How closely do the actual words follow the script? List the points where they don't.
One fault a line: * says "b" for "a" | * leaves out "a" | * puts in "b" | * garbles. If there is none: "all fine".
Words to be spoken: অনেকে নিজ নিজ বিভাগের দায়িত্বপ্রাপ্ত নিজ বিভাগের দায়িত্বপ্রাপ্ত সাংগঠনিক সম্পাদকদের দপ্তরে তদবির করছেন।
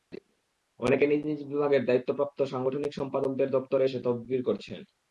* leaves out "নিজ বিভাগের দায়িত্বপ্রাপ্ত"
* puts in "এসে"